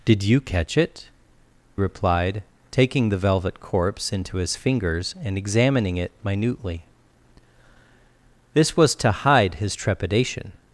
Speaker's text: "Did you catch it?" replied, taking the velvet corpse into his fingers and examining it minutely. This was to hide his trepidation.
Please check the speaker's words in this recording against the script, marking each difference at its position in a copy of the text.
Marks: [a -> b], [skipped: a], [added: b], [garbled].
"Did you catch it?" replied, taking the velvet corpse into his fingers and examining it minutely. This was to hide his trepidation.